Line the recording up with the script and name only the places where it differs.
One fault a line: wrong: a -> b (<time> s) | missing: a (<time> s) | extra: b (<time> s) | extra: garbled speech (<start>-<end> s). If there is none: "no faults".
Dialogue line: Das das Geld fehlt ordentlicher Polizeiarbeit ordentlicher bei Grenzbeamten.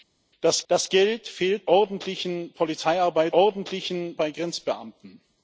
no faults